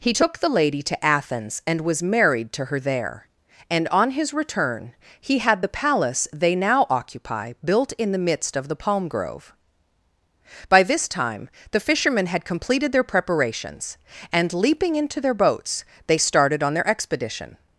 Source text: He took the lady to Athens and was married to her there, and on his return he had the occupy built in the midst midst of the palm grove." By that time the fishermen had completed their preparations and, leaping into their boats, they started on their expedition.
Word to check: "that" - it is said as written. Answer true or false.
false